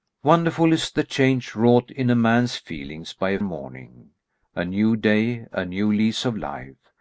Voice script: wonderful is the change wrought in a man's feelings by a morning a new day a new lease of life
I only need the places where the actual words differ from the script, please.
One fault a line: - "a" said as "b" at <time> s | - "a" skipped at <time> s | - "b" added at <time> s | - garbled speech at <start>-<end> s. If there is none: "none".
none